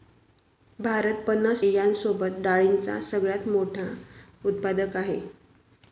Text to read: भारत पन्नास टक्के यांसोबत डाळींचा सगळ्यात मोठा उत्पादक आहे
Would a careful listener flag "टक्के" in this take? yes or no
yes